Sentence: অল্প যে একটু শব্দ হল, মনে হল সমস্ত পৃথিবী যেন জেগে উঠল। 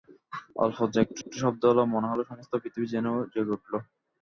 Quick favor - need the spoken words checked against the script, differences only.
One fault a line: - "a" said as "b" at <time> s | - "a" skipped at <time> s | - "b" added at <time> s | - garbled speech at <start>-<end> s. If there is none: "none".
- "একটু" added at 1.2 s